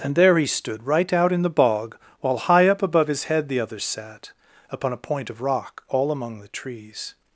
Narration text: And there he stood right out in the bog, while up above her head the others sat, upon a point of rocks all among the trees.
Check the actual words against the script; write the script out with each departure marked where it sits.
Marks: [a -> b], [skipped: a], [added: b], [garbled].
And there he stood right out in the bog, while [added: high] up above [her -> his] head the others sat, upon a point of [rocks -> rock] all among the trees.